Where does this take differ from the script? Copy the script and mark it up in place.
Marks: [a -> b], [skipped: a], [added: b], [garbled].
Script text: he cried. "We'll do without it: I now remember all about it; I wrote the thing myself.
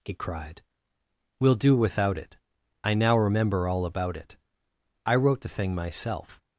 he cried. "We'll do without it: I now remember all about it; I wrote the thing myself.